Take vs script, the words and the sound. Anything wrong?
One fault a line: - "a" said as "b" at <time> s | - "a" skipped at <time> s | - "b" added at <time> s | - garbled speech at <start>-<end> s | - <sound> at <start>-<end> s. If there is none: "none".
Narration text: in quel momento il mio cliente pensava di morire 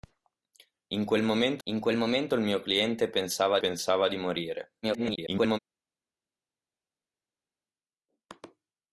- "in quel momento" added at 1.6 s
- "pensava" added at 3.6 s
- garbled speech at 4.8-5.6 s